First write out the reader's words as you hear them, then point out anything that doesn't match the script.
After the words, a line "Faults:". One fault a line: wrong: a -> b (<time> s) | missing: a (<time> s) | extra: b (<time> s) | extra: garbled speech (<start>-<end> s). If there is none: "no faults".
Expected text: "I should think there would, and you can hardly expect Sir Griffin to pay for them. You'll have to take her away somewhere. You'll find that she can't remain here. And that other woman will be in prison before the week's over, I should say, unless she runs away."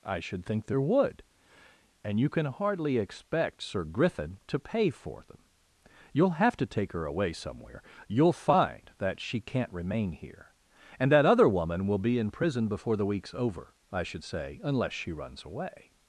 "I should think there would, and you can hardly expect Sir Griffin to pay for them. You'll have to take her away somewhere. You'll find that she can't remain here. And that other woman will be in prison before the week's over, I should say, unless she runs away."
Faults:
no faults